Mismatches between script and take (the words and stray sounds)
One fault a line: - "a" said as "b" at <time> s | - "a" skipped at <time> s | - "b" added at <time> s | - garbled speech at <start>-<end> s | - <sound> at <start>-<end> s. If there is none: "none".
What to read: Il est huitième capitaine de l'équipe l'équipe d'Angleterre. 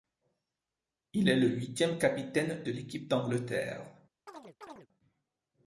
- "le" added at 1.4 s
- "l'équipe" skipped at 3.1 s
- chirp at 4.3-4.9 s